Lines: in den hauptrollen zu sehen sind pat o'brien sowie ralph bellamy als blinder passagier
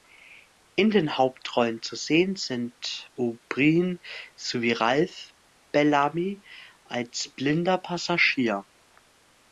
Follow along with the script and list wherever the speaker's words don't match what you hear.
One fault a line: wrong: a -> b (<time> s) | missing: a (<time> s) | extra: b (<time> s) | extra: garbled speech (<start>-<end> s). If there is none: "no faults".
missing: pat (3.1 s)